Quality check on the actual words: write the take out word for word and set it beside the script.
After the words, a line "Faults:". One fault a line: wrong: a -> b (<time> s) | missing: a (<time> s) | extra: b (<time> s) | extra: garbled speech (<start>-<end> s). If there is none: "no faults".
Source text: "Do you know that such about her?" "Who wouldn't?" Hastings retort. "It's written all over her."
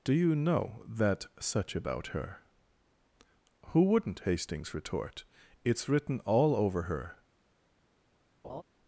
"Do you know that such about her?" "Who wouldn't?" Hastings retort. "It's written all over her."
Faults:
no faults